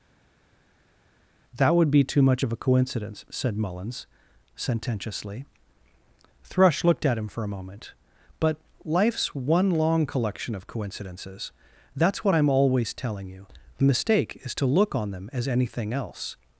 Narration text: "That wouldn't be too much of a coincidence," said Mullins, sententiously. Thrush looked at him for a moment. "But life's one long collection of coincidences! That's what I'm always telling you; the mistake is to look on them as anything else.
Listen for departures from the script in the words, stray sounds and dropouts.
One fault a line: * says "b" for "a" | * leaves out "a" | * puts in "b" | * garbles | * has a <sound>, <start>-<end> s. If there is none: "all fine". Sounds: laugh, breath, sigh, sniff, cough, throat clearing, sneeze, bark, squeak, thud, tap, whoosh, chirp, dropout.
* says "would" for "wouldn't"